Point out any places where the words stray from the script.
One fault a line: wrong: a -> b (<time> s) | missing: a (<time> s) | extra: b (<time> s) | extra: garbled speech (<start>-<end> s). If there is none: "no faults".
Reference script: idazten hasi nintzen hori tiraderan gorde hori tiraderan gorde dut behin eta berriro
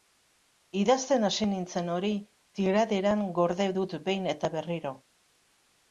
missing: hori tiraderan gorde (3.7 s)